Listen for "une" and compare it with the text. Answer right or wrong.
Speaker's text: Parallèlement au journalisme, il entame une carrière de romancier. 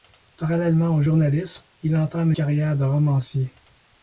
wrong